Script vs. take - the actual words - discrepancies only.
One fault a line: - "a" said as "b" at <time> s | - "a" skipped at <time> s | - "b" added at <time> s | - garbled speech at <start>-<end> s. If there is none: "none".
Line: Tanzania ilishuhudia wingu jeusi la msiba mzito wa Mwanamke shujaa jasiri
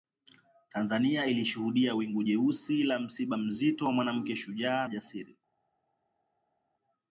none